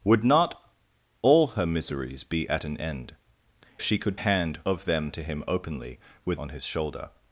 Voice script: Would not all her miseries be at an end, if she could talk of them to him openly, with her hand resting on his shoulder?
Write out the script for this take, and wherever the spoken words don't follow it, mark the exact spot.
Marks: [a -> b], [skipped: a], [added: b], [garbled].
Would not all her miseries be at an end, [skipped: if] she could [talk -> hand] of them to him openly, with [skipped: her hand resting] on his shoulder?